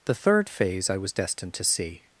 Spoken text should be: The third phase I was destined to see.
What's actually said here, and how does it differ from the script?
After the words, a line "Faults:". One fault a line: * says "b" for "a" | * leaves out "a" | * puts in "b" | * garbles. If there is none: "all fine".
The third phase I was destined to see.
Faults:
all fine